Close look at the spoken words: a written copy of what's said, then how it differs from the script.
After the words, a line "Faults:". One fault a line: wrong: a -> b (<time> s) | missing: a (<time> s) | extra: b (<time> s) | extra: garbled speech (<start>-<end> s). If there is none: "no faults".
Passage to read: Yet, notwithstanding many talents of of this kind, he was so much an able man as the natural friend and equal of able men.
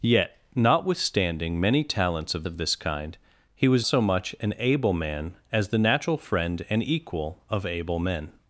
Yet, notwithstanding many talents of of this kind, he was so much an able man as the natural friend and equal of able men.
Faults:
no faults